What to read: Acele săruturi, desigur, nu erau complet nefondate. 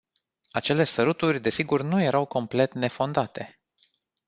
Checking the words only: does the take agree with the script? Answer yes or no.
yes